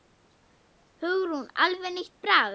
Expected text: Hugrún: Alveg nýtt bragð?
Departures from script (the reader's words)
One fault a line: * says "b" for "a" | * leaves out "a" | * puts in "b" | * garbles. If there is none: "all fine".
all fine